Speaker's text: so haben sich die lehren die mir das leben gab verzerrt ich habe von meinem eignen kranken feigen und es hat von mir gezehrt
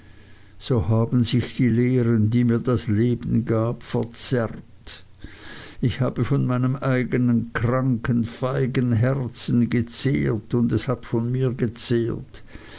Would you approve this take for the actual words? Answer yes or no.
no